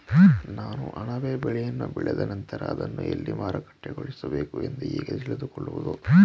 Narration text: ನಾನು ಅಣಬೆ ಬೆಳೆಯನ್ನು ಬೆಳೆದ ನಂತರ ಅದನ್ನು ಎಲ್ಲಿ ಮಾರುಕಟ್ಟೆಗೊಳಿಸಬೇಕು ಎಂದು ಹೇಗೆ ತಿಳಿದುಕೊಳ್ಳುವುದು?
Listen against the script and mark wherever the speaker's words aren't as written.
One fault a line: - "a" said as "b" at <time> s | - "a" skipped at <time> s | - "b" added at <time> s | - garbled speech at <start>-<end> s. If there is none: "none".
none